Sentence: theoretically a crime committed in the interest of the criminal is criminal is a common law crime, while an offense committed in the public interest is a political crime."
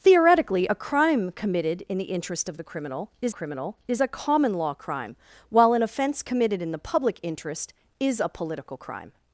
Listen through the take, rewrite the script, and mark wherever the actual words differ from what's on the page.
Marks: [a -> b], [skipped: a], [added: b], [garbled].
theoretically a crime committed in the interest of the criminal is criminal is a common law crime, while an offense committed in the public interest is a political crime."